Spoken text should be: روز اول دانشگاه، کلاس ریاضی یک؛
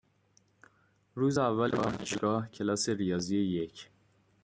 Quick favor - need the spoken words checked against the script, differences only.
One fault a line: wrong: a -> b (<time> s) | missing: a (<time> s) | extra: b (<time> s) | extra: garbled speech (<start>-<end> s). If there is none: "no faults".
no faults